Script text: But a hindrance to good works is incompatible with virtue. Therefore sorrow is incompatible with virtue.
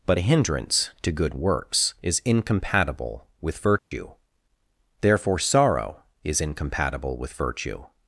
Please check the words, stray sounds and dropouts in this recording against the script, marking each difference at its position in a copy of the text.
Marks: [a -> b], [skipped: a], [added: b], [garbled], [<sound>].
But a hindrance to good works is incompatible with virtue. [dropout] Therefore sorrow is incompatible with virtue.